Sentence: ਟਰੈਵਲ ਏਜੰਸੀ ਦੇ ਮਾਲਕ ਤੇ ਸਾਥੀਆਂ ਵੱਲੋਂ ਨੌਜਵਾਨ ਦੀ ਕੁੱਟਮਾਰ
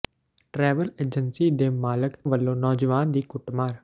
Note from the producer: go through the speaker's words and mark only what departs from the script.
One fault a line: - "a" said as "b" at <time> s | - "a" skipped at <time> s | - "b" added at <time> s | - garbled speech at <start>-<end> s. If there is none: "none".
- "ਤੇ ਸਾਥੀਆਂ" skipped at 2.1 s